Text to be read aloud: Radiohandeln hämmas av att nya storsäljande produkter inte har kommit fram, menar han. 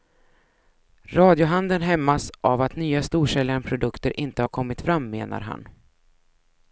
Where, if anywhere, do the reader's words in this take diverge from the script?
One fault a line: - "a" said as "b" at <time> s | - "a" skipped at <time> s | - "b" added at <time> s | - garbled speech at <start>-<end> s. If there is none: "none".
none